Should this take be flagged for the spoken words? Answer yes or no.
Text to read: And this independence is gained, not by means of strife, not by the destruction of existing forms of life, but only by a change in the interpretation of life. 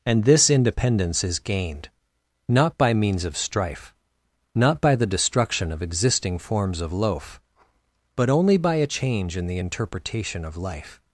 yes